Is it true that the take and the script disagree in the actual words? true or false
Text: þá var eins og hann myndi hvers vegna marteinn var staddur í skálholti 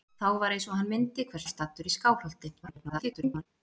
true